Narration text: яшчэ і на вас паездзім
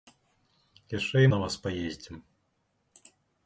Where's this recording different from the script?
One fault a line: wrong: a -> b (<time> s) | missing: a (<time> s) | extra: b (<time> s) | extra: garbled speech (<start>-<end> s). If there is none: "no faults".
no faults